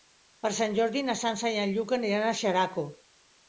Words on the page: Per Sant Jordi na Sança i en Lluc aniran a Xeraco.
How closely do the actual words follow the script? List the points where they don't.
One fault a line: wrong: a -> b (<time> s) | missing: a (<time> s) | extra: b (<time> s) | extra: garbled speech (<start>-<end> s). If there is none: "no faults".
no faults